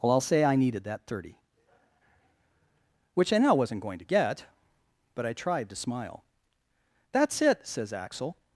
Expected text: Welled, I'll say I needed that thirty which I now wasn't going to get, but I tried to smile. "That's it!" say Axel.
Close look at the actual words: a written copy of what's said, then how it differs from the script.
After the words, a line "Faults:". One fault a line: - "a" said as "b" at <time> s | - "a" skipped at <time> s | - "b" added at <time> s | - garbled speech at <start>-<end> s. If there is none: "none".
Well, I'll say I needed that thirty which I now wasn't going to get, but I tried to smile. "That's it!" says Axel.
Faults:
- "Welled" said as "Well" at 0.0 s
- "say" said as "says" at 7.7 s